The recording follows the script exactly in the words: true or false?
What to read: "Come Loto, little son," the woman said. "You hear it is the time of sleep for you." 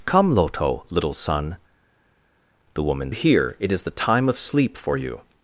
false